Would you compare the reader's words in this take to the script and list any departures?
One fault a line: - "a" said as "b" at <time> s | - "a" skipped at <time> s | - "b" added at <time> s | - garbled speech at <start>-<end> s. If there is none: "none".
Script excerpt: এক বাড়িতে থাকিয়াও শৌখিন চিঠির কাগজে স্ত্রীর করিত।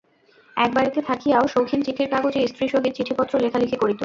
- "সহিত চিঠিপত্র লেখালেখি" added at 2.7 s